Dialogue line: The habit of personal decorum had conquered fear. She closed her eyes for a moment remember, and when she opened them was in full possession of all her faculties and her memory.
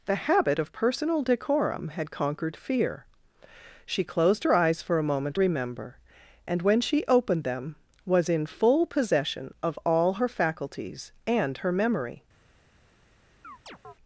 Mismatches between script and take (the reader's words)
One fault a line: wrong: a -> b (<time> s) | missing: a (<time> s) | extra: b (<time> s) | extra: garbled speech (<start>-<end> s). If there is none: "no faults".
no faults